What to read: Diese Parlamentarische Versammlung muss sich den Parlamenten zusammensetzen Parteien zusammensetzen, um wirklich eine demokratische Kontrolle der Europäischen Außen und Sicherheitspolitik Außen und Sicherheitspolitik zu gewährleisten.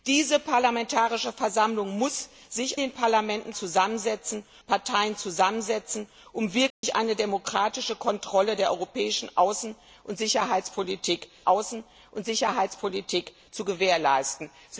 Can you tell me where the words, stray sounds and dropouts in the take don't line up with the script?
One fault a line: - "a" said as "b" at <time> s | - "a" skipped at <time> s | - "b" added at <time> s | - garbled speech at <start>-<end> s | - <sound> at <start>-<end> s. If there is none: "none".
- dropout at 6.7-6.8 s